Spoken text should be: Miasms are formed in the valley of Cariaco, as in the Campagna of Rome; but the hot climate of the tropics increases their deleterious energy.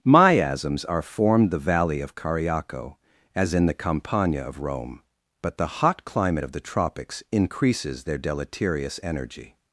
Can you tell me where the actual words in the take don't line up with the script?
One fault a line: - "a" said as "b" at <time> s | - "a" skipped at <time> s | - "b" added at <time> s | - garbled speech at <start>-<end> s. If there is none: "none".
- "in" skipped at 1.5 s